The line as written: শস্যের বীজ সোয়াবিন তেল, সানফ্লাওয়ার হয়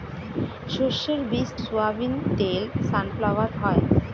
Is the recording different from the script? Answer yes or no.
no